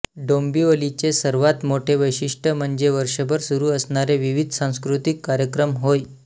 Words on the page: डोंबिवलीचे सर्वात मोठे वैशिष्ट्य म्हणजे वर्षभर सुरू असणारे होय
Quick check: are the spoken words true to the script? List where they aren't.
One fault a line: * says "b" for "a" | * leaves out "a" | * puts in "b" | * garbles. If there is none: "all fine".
* puts in "विविध सांस्कृतिक कार्यक्रम"